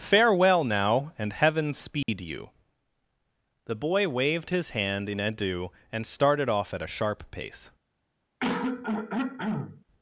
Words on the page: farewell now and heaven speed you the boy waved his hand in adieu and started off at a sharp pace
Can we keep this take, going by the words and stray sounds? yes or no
no